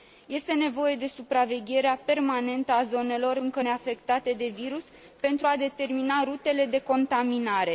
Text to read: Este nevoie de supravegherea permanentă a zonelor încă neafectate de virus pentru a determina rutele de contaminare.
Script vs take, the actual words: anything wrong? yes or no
no